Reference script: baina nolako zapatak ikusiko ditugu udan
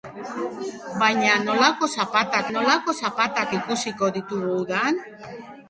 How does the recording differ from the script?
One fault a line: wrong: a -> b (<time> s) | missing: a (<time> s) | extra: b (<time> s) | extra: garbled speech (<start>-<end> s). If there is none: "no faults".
extra: nolako zapatak (2.5 s)